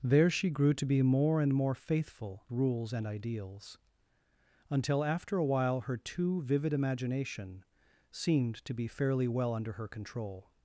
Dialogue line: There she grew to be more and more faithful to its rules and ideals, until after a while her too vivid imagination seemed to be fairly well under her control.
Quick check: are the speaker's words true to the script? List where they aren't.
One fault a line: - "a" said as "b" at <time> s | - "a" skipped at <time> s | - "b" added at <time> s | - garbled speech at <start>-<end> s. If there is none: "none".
- "to its" skipped at 2.4 s